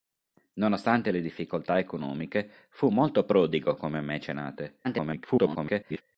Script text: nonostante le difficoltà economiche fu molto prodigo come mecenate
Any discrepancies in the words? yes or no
yes